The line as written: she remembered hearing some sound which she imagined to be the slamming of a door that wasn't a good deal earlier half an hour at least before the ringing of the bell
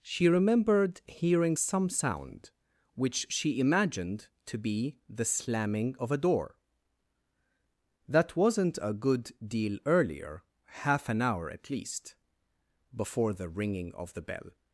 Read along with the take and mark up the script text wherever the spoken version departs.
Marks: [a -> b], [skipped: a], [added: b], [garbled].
she remembered hearing some sound which she imagined to be the slamming of a door that wasn't a good deal earlier half an hour at least before the ringing of the bell